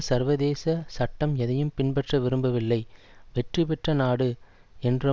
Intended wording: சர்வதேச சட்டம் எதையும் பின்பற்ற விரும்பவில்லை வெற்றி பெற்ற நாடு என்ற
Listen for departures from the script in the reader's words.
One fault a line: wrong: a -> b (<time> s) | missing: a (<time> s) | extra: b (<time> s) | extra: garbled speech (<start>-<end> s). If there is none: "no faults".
no faults